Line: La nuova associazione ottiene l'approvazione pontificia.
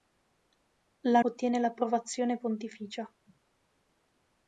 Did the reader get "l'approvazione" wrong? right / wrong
right